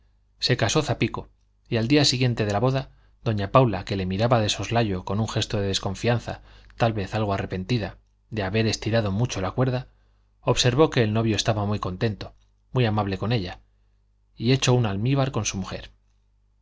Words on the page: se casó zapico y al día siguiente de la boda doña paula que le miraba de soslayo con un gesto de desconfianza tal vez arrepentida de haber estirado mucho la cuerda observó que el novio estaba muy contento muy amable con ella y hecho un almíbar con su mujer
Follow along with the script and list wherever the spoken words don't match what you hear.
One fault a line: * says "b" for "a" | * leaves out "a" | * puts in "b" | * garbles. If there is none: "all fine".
* puts in "algo"